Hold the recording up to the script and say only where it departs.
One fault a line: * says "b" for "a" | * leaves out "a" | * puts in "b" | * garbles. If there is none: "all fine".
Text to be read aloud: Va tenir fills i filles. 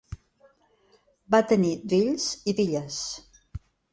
all fine